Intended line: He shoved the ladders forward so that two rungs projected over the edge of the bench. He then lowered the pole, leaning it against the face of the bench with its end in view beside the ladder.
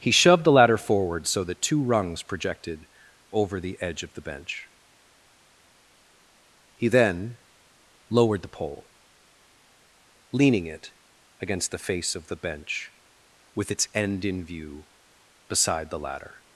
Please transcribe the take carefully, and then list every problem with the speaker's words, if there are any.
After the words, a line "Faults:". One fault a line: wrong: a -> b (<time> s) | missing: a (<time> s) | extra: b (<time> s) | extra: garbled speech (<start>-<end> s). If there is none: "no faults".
He shoved the ladder forward so that two rungs projected over the edge of the bench. He then lowered the pole, leaning it against the face of the bench with its end in view beside the ladder.
Faults:
wrong: ladders -> ladder (0.5 s)